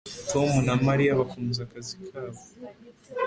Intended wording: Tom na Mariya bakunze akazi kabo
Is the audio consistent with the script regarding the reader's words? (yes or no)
yes